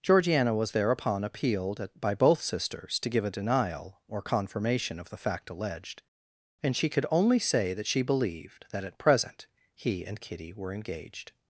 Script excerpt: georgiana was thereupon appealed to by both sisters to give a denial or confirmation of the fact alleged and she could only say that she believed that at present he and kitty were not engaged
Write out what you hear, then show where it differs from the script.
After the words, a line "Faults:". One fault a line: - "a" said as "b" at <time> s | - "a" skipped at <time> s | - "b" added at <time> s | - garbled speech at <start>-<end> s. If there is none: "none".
georgiana was thereupon appealed at by both sisters to give a denial or confirmation of the fact alleged and she could only say that she believed that at present he and kitty were engaged
Faults:
- "to" said as "at" at 1.8 s
- "not" skipped at 10.7 s